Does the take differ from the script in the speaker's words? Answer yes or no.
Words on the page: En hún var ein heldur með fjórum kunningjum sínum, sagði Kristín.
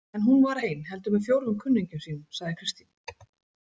no